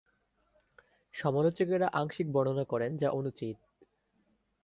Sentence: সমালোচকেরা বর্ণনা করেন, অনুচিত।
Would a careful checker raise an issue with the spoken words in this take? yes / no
yes